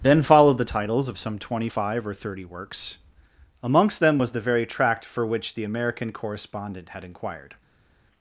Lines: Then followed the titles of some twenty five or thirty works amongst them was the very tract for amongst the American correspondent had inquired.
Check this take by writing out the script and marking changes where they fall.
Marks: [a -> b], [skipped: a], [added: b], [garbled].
Then followed the titles of some twenty five or thirty works amongst them was the very tract for [amongst -> which] the American correspondent had inquired.